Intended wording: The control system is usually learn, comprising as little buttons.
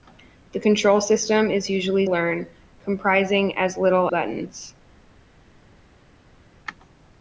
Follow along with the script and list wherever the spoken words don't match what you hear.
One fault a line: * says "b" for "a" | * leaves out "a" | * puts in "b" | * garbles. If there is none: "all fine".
all fine